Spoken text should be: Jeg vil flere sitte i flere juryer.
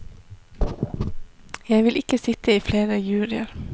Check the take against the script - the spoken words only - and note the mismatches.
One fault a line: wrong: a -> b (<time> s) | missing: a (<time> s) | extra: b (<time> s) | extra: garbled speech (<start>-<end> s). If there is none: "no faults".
wrong: flere -> ikke (1.9 s)